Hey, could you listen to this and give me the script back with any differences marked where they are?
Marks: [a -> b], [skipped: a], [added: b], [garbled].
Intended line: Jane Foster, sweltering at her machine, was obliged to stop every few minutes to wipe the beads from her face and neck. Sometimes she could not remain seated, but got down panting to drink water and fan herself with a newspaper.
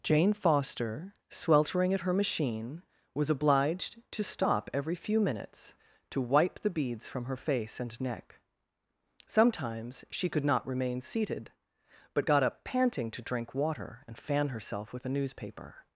Jane Foster, sweltering at her machine, was obliged to stop every few minutes to wipe the beads from her face and neck. Sometimes she could not remain seated, but got [down -> up] panting to drink water and fan herself with a newspaper.